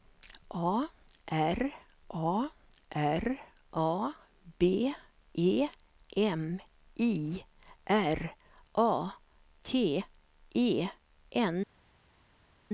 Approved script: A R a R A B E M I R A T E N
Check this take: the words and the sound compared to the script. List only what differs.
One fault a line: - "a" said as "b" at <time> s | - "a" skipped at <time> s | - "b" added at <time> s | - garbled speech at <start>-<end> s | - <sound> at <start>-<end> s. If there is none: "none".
none